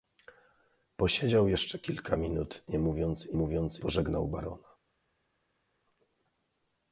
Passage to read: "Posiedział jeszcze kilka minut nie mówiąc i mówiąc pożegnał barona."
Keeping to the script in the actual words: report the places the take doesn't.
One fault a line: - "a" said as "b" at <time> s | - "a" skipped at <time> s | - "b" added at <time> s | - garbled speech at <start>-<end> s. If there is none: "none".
none